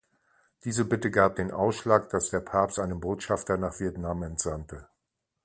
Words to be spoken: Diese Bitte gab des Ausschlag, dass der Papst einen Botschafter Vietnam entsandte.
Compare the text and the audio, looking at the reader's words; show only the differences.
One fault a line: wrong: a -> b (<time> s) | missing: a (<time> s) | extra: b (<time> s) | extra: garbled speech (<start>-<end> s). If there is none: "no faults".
wrong: des -> den (1.4 s)
extra: nach (3.6 s)